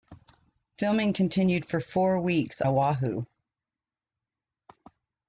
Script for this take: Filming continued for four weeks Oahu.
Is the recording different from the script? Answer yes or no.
no